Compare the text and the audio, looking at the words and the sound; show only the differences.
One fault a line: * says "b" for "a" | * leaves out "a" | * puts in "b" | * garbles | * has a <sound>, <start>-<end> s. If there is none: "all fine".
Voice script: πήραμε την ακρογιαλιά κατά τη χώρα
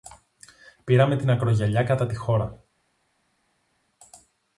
all fine